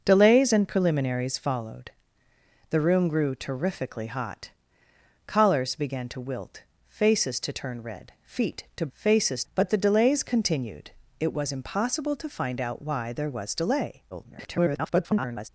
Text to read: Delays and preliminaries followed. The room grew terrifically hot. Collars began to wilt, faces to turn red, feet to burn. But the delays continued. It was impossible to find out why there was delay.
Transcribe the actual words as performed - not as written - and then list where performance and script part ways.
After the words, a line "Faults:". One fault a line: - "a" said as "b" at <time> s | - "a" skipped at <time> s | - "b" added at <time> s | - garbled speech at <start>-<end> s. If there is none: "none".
Delays and preliminaries followed. The room grew terrifically hot. Collars began to wilt, faces to turn red, feet to faces. But the delays continued. It was impossible to find out why there was delay. [garbled]
Faults:
- "burn" said as "faces" at 8.9 s
- garbled speech at 14.1-15.5 s